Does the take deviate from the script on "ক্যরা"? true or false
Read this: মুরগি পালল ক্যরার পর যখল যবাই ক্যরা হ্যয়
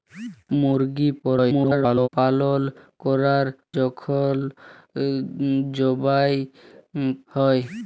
true